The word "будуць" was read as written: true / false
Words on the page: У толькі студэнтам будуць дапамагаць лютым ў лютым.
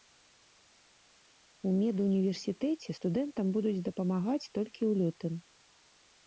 true